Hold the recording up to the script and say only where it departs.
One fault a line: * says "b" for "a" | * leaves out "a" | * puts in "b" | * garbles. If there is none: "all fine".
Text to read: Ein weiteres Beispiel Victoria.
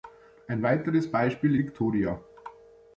all fine